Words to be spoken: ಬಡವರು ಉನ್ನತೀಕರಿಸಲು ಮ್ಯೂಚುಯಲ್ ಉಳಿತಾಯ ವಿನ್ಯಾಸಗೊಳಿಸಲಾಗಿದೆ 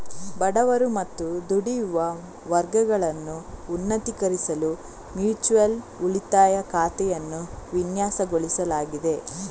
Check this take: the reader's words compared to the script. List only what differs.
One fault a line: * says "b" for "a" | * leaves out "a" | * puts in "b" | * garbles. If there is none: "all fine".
* puts in "ಮತ್ತು ದುಡಿಯುವ ವರ್ಗಗಳನ್ನು"
* puts in "ಖಾತೆಯನ್ನು"